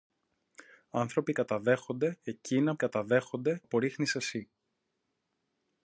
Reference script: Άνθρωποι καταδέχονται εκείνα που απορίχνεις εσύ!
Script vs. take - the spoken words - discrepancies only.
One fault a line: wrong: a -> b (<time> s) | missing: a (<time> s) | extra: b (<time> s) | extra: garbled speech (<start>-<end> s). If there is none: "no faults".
wrong: που -> καταδέχονται (2.7 s)